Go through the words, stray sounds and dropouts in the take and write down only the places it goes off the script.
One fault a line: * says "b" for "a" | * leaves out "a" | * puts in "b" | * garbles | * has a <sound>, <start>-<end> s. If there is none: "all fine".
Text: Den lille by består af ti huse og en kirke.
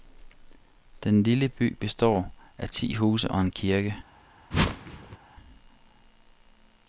* has a whoosh, 4.5-5.2 s